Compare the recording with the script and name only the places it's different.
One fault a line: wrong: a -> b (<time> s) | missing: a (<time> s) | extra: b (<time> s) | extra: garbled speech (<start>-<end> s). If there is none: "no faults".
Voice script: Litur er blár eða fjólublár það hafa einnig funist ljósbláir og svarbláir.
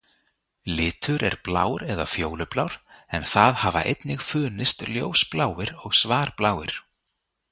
extra: en (3.2 s)